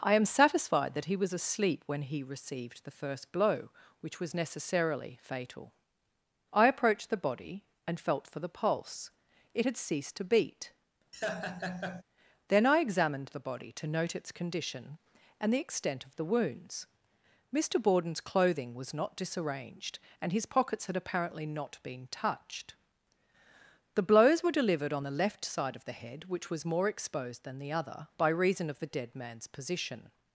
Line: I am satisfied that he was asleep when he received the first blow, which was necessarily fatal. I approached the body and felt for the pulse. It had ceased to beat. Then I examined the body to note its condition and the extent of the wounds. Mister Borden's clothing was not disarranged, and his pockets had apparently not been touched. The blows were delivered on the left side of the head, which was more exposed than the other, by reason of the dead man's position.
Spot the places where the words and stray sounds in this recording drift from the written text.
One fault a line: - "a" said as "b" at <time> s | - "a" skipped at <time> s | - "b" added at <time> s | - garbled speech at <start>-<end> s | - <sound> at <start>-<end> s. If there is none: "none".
- laugh at 11.1-12.0 s